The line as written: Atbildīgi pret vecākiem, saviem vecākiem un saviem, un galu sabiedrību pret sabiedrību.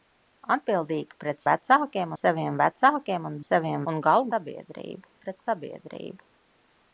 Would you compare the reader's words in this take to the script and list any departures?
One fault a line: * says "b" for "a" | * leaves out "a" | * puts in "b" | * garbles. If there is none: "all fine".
all fine